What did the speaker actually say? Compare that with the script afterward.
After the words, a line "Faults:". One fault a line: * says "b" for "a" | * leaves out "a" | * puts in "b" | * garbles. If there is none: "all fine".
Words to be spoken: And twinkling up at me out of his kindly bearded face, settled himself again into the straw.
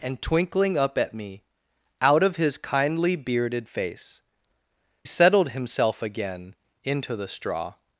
And twinkling up at me out of his kindly bearded face, settled himself again into the straw.
Faults:
all fine